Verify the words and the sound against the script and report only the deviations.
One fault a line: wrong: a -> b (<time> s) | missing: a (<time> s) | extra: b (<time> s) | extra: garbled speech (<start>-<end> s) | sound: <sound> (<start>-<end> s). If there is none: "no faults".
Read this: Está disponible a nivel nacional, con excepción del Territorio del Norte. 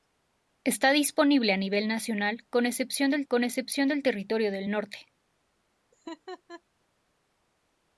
extra: con excepción del (3.3 s)
sound: laugh (5.9-6.6 s)